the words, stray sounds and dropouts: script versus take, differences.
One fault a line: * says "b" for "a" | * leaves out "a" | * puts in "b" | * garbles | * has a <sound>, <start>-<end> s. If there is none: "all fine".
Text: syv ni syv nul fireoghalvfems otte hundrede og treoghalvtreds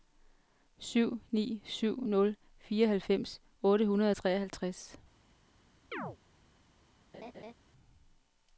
* has a chirp, 5.9-6.2 s
* has a laugh, 7.1-7.5 s